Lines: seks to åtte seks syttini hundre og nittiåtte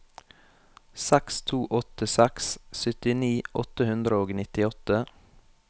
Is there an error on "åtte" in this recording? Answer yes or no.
no